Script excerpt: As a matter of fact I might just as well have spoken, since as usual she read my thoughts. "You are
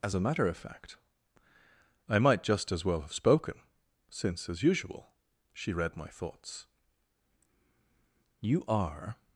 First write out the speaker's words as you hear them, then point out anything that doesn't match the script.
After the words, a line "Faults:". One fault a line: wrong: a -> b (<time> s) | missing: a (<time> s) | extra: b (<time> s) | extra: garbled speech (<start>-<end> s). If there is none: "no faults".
As a matter of fact I might just as well have spoken, since as usual she read my thoughts. "You are
Faults:
no faults